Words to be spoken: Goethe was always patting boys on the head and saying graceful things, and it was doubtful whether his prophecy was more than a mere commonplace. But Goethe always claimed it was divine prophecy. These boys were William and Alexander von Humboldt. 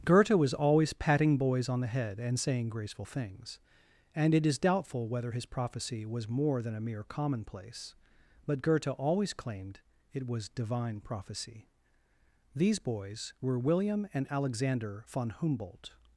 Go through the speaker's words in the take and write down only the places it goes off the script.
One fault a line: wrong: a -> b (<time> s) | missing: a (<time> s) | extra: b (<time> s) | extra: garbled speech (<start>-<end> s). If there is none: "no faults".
wrong: was -> is (4.5 s)